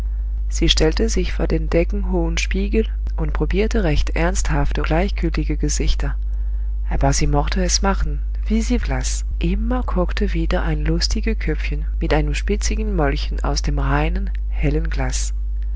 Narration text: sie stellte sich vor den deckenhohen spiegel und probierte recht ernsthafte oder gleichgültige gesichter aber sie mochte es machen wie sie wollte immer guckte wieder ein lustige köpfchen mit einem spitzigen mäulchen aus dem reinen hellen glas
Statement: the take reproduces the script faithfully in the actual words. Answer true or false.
false